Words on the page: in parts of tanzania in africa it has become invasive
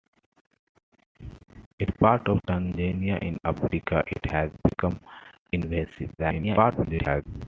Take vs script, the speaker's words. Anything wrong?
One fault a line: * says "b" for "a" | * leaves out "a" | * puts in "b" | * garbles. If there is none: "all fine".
* garbles